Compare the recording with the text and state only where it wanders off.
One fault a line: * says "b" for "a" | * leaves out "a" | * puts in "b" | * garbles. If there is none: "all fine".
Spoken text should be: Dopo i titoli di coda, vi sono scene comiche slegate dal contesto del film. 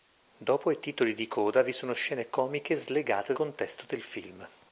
* leaves out "dal"